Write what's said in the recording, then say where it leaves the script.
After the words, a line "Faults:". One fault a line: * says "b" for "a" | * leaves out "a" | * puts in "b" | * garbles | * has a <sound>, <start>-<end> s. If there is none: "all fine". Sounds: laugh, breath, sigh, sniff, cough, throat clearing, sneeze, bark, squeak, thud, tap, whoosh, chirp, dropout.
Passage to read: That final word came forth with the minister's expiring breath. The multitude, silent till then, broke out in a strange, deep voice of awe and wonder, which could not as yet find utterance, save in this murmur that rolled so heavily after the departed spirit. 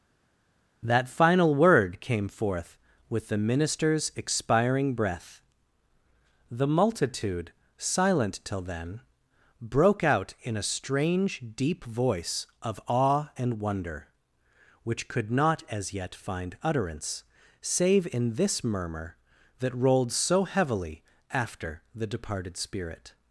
That final word came forth with the minister's expiring breath. The multitude, silent till then, broke out in a strange, deep voice of awe and wonder, which could not as yet find utterance, save in this murmur that rolled so heavily after the departed spirit.
Faults:
all fine